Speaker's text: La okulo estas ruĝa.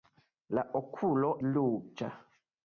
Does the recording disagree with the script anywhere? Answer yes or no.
yes